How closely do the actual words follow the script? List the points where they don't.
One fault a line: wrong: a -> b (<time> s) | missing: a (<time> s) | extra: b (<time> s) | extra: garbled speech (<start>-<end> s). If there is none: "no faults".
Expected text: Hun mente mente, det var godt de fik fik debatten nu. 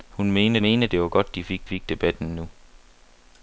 no faults